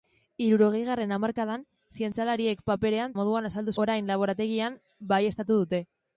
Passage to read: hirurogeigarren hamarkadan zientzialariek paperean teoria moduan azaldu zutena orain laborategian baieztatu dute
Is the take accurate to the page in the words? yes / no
no